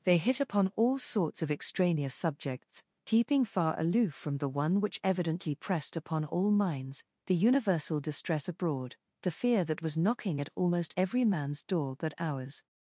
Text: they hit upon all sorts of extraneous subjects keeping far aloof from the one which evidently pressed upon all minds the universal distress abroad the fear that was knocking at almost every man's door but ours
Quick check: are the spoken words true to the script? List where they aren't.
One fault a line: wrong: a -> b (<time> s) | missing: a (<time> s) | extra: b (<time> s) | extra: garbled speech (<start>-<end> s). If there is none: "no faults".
no faults